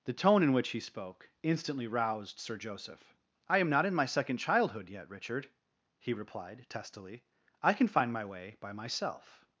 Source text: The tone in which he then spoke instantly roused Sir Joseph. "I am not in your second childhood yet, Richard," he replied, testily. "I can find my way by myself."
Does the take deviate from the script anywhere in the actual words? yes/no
yes